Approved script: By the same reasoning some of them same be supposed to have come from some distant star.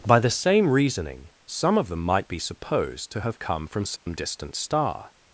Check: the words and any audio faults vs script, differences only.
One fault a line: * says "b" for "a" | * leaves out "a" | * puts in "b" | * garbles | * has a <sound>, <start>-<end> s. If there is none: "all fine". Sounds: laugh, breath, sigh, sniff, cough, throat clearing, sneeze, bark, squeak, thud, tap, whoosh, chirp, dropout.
* says "might" for "same"
* has a dropout, 4.0-4.1 s